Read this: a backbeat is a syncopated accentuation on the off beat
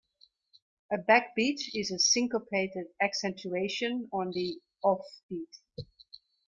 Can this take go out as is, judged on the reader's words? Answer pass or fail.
pass